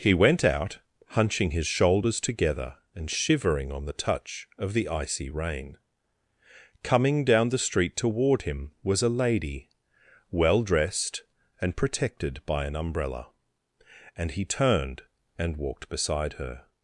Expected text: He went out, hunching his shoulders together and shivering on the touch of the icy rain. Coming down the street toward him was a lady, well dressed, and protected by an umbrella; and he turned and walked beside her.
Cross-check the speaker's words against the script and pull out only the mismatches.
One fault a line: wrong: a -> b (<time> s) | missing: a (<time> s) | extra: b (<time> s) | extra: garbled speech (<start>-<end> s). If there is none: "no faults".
no faults